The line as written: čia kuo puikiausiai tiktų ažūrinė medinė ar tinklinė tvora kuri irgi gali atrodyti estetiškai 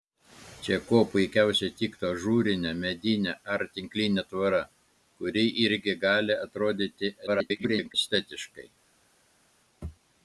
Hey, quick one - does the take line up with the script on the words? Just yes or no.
no